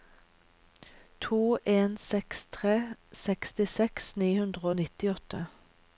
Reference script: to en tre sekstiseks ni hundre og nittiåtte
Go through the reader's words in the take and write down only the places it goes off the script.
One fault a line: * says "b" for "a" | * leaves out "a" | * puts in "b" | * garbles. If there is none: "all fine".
* puts in "seks"